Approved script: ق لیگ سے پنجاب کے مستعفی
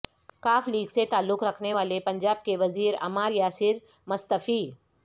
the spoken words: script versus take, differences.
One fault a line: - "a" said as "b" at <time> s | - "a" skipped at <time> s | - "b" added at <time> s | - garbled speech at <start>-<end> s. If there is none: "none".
- "تعلق رکھنے والے" added at 1.1 s
- "وزیر عمار یاسر" added at 2.6 s